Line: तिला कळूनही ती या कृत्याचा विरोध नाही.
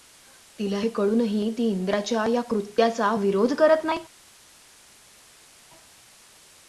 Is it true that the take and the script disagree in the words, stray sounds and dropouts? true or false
true